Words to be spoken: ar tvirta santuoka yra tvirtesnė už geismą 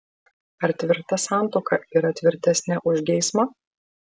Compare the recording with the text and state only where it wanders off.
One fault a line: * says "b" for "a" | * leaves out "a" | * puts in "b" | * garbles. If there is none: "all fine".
all fine